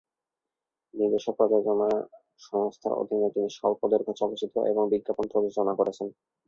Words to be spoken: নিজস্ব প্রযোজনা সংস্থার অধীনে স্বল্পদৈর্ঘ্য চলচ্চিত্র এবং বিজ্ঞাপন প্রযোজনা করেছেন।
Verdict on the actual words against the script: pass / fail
fail